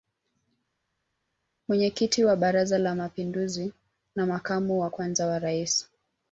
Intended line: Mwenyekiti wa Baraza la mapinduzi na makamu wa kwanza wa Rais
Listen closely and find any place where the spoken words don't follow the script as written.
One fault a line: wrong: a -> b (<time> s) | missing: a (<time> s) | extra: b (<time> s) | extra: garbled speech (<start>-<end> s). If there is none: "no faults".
no faults